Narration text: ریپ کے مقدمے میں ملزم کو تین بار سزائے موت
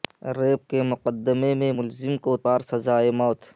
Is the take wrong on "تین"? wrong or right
wrong